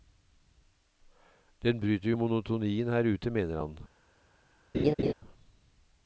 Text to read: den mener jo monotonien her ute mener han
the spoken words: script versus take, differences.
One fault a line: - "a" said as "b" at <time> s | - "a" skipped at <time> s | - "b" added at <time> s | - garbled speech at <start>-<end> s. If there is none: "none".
- "mener" said as "bryter" at 1.8 s